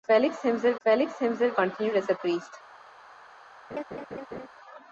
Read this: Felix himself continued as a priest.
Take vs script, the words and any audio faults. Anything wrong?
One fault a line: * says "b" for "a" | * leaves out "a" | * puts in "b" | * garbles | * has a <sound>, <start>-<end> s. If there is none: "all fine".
* puts in "felix himself"
* has a laugh, 3.7-4.5 s